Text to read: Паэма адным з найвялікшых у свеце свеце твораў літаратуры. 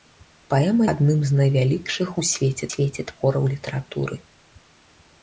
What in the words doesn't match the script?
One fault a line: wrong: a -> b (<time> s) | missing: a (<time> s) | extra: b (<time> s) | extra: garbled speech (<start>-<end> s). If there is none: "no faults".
no faults